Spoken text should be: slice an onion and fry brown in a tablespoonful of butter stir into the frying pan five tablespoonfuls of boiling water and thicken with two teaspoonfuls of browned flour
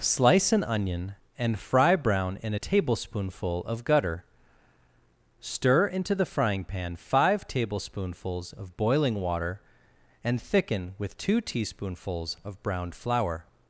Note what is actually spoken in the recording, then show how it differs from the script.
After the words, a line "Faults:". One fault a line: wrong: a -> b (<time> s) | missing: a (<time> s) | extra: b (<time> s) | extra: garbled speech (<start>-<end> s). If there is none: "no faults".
slice an onion and fry brown in a tablespoonful of gutter stir into the frying pan five tablespoonfuls of boiling water and thicken with two teaspoonfuls of browned flour
Faults:
wrong: butter -> gutter (3.8 s)